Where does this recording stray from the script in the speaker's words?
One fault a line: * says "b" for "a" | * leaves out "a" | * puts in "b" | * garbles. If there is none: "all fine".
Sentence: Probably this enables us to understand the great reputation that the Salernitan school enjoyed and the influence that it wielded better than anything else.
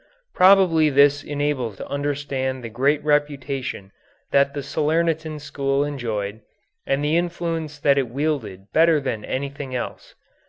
* leaves out "us"